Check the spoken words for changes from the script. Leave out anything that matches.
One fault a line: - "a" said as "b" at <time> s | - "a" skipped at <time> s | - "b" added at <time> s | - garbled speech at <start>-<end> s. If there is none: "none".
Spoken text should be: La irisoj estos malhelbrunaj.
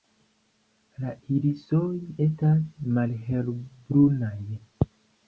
- "estos" said as "estas" at 2.3 s